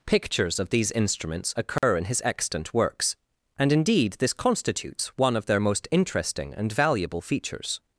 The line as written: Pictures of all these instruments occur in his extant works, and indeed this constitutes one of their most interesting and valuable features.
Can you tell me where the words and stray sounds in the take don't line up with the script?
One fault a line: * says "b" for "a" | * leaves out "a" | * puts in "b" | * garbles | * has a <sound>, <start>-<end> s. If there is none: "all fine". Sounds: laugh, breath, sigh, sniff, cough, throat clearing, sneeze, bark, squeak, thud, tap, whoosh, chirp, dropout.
* leaves out "all"
* has a dropout, 1.8-1.8 s